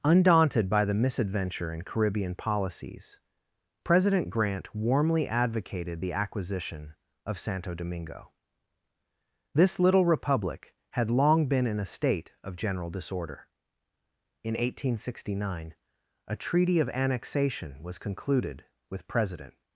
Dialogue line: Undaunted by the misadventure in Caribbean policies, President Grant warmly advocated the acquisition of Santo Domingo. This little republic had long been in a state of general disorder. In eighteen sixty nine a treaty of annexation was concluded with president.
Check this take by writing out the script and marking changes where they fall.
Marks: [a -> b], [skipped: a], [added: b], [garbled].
Undaunted by the misadventure in Caribbean policies, President Grant warmly advocated the acquisition of Santo Domingo. This little republic had long been in a state of general disorder. In eighteen sixty nine a treaty of annexation was concluded with president.